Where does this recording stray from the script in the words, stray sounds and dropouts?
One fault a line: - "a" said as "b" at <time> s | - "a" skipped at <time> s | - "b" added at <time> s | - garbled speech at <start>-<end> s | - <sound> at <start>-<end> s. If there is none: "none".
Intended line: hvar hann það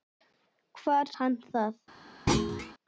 - thud at 2.3-2.7 s